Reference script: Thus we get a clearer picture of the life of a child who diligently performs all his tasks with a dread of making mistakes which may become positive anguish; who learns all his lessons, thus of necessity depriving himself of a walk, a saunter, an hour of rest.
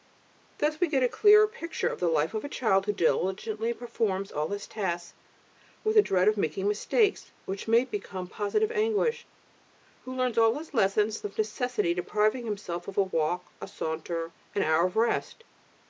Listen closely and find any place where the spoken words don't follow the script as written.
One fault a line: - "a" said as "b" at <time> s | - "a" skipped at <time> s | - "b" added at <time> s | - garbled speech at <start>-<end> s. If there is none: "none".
- "thus" skipped at 11.2 s